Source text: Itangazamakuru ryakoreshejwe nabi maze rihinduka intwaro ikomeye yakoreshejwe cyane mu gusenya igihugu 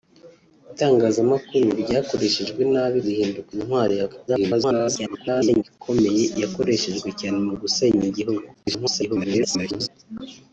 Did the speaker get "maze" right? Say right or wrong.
wrong